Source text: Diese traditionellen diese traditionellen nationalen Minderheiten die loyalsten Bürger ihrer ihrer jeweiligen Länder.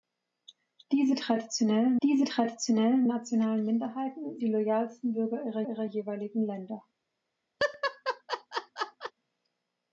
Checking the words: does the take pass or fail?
pass